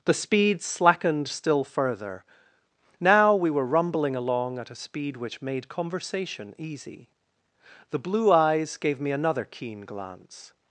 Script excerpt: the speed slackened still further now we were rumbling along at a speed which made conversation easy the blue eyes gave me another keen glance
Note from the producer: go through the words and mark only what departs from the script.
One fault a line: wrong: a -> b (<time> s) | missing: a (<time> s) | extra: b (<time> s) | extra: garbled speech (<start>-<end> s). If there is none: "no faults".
no faults